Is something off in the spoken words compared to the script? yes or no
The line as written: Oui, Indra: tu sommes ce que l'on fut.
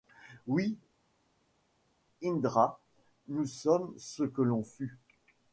yes